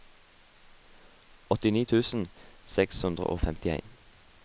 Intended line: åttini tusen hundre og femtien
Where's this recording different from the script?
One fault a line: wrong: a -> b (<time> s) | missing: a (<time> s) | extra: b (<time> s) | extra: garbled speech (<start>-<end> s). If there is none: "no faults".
extra: seks (2.8 s)